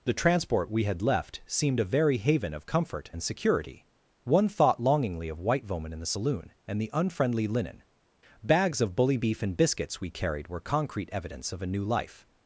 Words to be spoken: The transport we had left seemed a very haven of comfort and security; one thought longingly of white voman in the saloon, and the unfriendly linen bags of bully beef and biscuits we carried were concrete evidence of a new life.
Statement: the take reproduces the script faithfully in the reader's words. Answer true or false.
true